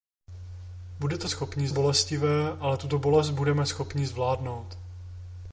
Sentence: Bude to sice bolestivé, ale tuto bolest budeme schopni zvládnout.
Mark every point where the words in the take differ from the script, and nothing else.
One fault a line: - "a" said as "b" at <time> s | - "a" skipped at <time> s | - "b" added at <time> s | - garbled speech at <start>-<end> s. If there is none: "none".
- "sice" said as "schopni" at 1.3 s